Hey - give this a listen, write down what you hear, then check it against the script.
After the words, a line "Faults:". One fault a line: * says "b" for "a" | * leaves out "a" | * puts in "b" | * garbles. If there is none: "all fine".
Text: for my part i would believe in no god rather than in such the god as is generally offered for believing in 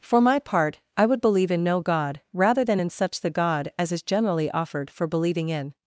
for my part i would believe in no god rather than in such the god as is generally offered for believing in
Faults:
all fine